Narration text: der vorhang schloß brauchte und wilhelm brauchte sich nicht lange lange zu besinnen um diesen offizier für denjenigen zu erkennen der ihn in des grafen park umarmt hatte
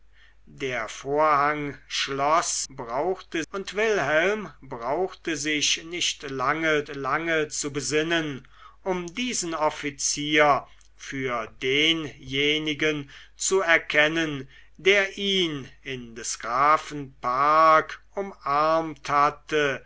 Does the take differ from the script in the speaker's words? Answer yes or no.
no